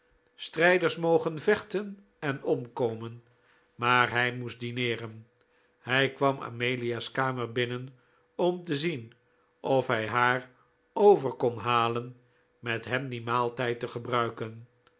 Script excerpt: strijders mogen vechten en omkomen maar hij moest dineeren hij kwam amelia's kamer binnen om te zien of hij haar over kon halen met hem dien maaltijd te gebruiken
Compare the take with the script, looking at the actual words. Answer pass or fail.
pass